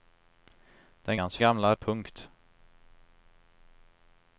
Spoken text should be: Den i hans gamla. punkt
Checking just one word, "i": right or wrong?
right